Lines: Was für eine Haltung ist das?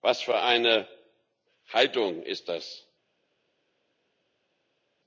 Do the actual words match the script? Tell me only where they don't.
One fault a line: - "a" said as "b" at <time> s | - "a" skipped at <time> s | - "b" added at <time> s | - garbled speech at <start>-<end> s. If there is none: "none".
none